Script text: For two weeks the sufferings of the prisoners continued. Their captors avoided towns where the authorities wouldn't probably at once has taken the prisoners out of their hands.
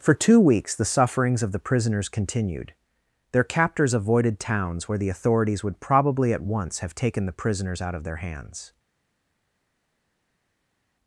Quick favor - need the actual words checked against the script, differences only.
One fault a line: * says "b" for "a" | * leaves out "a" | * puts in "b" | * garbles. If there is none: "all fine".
* says "would" for "wouldn't"
* says "have" for "has"